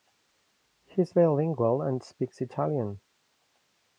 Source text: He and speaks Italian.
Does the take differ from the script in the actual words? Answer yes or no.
yes